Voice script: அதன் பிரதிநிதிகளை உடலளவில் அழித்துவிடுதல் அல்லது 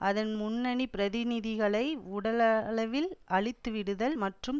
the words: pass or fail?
fail